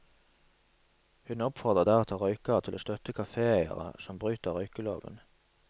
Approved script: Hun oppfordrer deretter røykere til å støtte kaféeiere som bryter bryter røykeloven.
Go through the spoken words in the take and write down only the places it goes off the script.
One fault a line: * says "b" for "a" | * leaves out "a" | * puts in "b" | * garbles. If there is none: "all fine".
* leaves out "bryter"